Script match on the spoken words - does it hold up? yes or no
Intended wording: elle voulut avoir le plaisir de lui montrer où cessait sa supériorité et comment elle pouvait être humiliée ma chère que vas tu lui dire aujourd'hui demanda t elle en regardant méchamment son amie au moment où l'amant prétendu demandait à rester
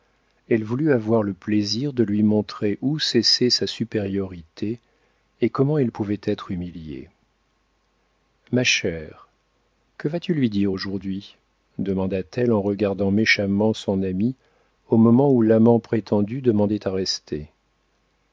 yes